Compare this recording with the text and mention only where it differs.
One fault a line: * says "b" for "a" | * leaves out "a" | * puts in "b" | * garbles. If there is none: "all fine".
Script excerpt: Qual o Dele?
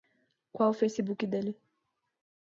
* puts in "Facebook"